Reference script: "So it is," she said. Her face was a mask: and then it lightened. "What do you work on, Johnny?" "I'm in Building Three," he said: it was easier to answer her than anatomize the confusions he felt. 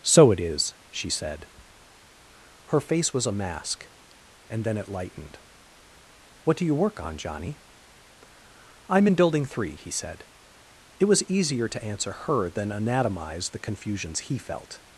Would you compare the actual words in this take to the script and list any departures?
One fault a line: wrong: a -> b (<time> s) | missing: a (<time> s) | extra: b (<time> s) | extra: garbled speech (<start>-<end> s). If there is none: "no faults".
no faults